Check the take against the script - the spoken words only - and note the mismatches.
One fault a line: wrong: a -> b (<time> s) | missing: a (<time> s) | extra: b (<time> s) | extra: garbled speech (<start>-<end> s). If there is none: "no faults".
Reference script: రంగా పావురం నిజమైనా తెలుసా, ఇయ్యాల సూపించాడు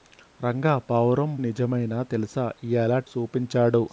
no faults